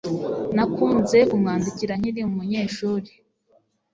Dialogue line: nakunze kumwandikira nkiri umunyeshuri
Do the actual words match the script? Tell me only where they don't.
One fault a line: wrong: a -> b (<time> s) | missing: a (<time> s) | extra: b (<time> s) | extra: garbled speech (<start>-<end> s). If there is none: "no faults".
no faults